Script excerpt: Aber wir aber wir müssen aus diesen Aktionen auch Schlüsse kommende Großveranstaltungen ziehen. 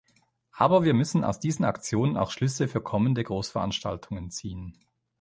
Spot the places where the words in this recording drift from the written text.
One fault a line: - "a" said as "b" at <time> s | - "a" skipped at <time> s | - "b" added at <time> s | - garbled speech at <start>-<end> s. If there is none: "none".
- "aber wir" skipped at 0.9 s
- "für" added at 2.7 s